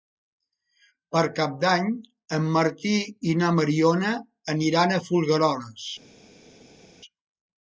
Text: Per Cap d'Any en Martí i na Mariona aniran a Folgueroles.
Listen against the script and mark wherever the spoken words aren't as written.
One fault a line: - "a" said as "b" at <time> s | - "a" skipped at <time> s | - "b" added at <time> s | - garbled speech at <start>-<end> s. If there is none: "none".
none